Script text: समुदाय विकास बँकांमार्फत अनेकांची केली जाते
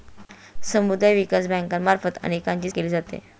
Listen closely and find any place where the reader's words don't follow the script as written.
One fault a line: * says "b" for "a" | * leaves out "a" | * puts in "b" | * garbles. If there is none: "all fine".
all fine